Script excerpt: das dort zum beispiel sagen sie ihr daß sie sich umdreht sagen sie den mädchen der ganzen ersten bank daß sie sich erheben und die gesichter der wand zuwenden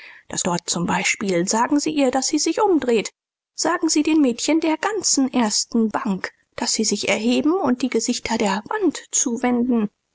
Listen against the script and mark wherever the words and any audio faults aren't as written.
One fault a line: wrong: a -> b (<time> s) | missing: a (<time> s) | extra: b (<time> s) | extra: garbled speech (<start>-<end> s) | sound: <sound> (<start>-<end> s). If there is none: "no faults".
no faults